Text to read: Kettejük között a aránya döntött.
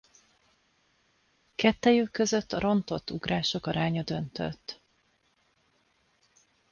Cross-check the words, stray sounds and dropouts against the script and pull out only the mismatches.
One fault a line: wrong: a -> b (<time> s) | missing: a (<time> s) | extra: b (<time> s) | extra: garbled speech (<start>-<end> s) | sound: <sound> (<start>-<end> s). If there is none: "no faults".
extra: rontott ugrások (2.6 s)